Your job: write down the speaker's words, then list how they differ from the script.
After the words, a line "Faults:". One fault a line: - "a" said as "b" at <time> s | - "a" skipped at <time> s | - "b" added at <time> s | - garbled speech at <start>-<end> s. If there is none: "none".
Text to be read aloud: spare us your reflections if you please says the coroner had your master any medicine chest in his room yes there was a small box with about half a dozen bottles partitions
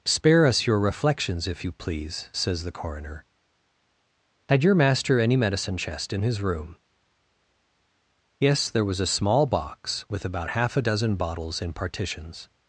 spare us your reflections if you please says the coroner had your master any medicine chest in his room yes there was a small box with about half a dozen bottles in partitions
Faults:
- "in" added at 11.6 s